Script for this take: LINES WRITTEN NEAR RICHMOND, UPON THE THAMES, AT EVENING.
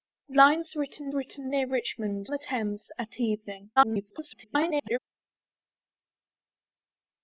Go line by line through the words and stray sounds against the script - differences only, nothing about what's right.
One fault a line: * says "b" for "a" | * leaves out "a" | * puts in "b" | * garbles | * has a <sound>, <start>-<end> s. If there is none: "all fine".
* puts in "WRITTEN"
* leaves out "UPON"
* garbles